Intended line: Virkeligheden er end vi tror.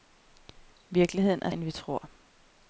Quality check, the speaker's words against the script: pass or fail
pass